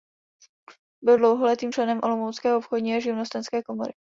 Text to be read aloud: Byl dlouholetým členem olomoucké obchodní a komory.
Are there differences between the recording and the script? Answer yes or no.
yes